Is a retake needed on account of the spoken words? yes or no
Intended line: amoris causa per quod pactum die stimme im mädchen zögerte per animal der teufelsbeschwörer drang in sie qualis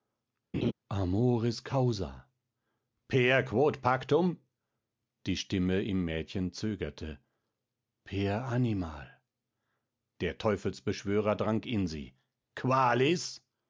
no